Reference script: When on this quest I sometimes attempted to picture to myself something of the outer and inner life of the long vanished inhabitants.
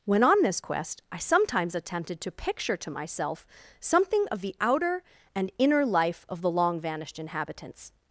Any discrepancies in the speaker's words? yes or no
no